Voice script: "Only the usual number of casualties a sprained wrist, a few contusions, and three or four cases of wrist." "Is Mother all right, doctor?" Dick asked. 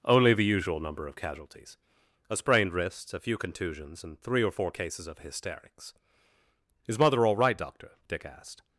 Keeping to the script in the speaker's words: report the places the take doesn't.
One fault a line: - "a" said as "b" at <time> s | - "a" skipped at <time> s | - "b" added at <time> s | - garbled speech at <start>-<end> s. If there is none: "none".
- "wrist" said as "hysterics" at 5.2 s